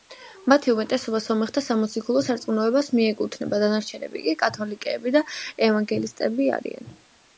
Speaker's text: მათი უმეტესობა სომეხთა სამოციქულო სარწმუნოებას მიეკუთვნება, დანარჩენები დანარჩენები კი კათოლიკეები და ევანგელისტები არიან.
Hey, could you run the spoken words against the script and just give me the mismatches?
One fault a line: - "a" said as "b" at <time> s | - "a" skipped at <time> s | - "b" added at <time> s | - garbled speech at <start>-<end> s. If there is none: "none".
- "დანარჩენები" skipped at 4.2 s